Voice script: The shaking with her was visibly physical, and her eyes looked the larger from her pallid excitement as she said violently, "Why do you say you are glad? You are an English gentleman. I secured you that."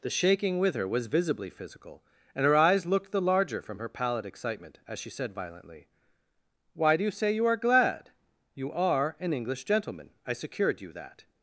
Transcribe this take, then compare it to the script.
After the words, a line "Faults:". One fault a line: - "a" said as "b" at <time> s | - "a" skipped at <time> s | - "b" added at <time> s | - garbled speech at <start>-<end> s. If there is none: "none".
The shaking with her was visibly physical, and her eyes looked the larger from her pallid excitement as she said violently, "Why do you say you are glad? You are an English gentleman. I secured you that."
Faults:
none